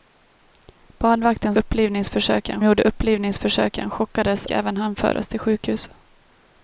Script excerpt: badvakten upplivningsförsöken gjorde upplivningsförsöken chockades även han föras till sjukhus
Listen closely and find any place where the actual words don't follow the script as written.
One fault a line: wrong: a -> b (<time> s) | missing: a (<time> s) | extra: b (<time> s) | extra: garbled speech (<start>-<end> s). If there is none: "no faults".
no faults